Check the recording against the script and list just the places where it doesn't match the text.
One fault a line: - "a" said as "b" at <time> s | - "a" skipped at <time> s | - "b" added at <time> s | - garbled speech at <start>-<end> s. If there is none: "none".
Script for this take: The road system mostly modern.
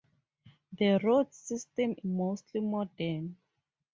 none